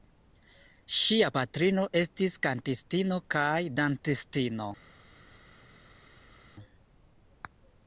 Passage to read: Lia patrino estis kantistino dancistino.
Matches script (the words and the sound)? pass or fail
fail